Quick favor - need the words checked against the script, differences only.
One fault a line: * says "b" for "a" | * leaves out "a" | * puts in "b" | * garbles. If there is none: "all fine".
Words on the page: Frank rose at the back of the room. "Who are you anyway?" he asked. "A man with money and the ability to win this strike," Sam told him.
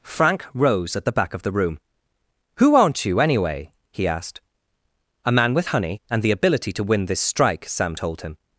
* says "aren't" for "are"
* says "honey" for "money"